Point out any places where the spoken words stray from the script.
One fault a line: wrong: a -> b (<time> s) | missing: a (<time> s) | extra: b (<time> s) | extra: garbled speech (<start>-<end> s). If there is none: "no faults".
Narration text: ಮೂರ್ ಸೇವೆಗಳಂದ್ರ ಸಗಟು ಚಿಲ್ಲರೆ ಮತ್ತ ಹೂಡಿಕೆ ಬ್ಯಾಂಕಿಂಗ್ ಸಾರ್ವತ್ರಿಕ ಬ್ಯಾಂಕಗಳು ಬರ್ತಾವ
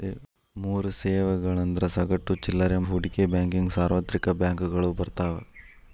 missing: ಮತ್ತ (2.8 s)